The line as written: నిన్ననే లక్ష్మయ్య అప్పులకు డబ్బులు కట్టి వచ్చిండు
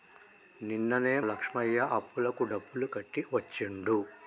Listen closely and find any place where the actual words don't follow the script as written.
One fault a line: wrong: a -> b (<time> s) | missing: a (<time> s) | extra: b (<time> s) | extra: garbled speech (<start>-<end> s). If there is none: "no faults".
no faults